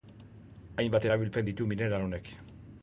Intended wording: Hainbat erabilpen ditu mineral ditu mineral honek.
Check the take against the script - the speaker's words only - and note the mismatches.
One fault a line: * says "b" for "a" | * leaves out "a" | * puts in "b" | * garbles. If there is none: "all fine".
* leaves out "ditu mineral"